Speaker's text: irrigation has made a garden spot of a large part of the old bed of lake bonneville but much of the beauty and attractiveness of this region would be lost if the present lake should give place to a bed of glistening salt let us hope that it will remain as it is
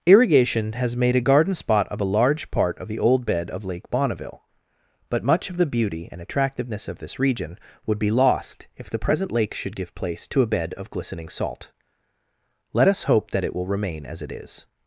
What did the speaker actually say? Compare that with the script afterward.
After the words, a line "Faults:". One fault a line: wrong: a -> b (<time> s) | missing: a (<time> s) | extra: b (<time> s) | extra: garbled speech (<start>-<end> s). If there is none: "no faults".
irrigation has made a garden spot of a large part of the old bed of lake bonneville but much of the beauty and attractiveness of this region would be lost if the present lake should give place to a bed of glistening salt let us hope that it will remain as it is
Faults:
no faults